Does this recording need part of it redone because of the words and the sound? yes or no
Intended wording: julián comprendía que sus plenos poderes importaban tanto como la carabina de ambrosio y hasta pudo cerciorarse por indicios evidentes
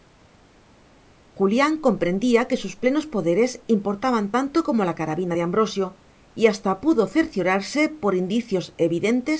no